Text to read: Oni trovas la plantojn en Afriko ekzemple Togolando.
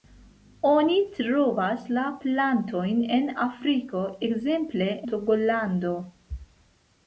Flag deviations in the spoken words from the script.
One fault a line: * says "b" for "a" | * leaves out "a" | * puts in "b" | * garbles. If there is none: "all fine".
all fine